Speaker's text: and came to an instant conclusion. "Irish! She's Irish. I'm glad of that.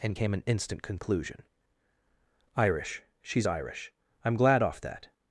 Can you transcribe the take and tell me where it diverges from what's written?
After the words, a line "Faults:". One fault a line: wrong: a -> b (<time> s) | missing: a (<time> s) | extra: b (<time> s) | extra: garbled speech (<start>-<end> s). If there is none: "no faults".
and came an instant conclusion. "Irish! She's Irish. I'm glad off that.
Faults:
missing: to (0.3 s)
wrong: of -> off (4.6 s)